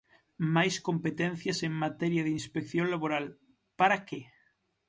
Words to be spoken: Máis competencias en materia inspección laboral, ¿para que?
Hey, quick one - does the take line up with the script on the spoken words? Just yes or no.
no